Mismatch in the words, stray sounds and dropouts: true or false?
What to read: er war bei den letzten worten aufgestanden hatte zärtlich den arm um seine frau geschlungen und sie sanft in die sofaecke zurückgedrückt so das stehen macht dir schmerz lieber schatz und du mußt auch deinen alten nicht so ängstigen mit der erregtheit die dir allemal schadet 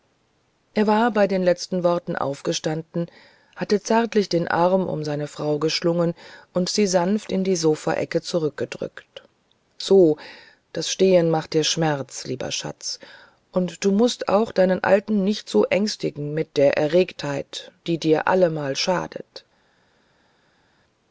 false